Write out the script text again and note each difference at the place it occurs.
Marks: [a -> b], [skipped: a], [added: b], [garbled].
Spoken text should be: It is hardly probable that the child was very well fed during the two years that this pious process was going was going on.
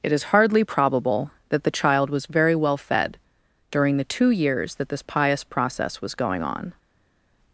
It is hardly probable that the child was very well fed during the two years that this pious process was going [skipped: was going] on.